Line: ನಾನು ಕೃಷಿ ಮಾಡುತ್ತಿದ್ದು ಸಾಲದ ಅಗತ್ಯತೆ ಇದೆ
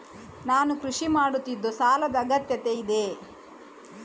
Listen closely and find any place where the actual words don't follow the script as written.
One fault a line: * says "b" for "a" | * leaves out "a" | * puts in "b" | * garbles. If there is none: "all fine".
all fine